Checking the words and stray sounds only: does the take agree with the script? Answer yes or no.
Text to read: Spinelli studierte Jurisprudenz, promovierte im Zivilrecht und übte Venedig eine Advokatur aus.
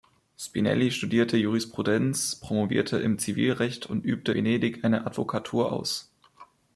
yes